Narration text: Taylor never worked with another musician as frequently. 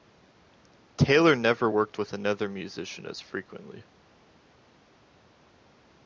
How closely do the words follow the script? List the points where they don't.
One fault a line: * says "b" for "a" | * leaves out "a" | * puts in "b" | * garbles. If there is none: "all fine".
all fine